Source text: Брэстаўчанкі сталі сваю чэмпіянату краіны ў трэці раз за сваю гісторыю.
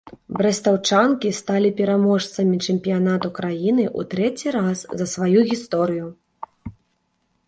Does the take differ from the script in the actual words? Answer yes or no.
yes